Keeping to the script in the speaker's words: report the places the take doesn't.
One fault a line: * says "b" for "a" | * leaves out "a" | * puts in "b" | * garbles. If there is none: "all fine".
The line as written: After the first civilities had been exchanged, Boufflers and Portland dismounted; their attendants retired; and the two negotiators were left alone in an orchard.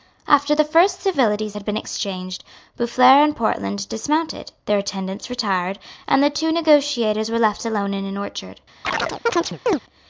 all fine